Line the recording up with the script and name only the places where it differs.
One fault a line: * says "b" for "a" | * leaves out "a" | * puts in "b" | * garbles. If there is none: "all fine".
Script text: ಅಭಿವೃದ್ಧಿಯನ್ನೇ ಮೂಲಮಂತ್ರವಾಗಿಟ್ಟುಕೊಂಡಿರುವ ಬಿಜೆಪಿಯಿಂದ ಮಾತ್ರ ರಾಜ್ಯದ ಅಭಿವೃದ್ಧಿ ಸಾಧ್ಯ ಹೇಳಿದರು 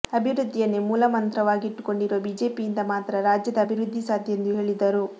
* puts in "ಎಂದು"